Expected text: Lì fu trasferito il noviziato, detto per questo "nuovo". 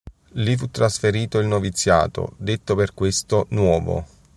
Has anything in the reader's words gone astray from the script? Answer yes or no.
no